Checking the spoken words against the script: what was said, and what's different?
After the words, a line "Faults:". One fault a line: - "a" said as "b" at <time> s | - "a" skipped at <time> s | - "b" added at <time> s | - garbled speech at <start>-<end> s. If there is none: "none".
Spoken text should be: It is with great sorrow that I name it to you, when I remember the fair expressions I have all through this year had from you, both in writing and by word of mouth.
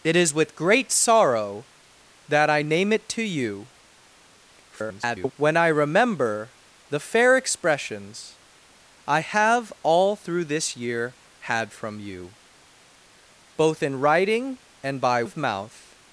It is with great sorrow that I name it to you, [garbled] when I remember the fair expressions I have all through this year had from you, both in writing and by of mouth.
Faults:
- garbled speech at 4.7-5.3 s
- "word" skipped at 15.2 s